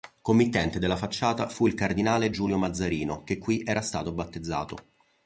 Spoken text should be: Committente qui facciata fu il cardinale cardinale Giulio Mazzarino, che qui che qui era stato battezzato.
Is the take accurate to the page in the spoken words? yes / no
no